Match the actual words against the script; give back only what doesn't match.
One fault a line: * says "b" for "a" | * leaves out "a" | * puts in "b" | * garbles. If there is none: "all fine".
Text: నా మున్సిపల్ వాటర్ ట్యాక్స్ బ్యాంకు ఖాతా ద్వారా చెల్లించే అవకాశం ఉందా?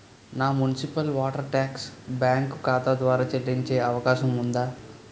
all fine